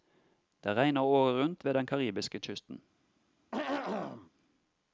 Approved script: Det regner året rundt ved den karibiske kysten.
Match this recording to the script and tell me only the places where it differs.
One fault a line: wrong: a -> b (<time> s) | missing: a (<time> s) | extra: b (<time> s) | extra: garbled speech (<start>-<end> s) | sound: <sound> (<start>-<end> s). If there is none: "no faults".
sound: throat clearing (3.5-4.3 s)